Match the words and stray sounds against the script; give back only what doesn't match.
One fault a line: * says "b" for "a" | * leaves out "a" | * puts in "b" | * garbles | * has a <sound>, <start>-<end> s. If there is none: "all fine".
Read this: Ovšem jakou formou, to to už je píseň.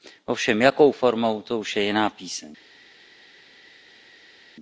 * leaves out "to"
* puts in "jiná"